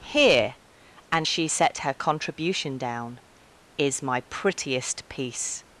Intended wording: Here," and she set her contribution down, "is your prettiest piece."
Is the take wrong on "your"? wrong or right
wrong